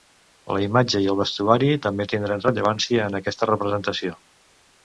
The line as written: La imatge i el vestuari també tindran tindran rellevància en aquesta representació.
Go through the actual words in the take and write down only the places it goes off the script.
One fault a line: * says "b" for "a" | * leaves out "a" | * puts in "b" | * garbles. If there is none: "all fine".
* leaves out "tindran"